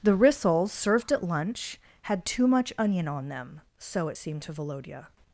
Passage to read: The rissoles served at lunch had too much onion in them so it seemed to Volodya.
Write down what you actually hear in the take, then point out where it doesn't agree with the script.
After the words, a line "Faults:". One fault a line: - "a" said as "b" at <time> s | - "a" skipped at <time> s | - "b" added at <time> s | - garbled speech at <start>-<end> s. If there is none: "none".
The rissoles served at lunch had too much onion on them so it seemed to Volodya.
Faults:
- "in" said as "on" at 3.1 s